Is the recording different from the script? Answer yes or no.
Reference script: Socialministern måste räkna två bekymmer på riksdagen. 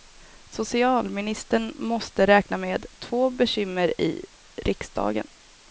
yes